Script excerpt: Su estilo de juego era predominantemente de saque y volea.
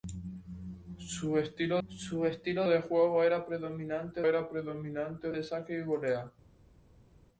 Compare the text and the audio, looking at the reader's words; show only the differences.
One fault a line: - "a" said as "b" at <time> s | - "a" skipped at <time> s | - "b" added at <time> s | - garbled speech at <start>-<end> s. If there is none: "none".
- "su estilo" added at 1.9 s
- "era predominantemente" added at 4.3 s